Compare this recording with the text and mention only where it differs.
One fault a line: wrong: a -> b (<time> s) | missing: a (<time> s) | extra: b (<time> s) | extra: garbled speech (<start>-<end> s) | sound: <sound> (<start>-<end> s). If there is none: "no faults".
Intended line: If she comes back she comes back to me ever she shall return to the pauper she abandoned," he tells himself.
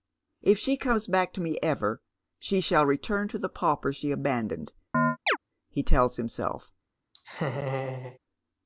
missing: she comes back (1.3 s)
sound: chirp (4.9-5.4 s)
sound: laugh (7.1-8.2 s)